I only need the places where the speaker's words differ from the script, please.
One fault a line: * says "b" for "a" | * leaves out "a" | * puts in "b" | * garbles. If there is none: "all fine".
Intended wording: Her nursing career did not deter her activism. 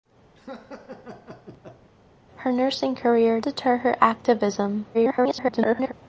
* leaves out "did not"
* garbles